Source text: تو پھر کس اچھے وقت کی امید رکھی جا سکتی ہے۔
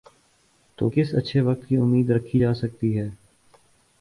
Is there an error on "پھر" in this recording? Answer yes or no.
yes